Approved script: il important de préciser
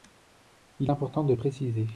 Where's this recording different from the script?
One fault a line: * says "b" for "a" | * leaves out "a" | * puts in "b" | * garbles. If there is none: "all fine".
all fine